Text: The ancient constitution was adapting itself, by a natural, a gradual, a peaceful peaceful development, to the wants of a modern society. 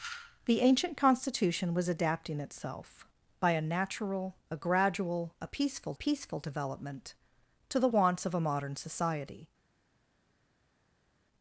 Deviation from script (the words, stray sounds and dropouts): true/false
false